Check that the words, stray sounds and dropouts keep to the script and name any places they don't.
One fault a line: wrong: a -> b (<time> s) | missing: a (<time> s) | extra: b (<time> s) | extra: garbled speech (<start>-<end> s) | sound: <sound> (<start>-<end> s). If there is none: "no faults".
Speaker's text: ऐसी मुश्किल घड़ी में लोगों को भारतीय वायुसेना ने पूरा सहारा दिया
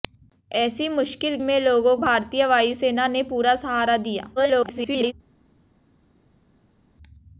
missing: घड़ी (1.4 s)
missing: को (1.9 s)
extra: garbled speech (4.4-5.1 s)